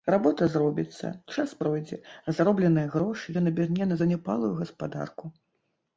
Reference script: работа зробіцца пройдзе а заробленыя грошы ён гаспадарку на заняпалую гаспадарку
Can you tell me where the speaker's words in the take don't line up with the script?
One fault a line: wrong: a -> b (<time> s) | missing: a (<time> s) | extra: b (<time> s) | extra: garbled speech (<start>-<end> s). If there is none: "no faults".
extra: час (1.3 s)
wrong: гаспадарку -> аберне (3.5 s)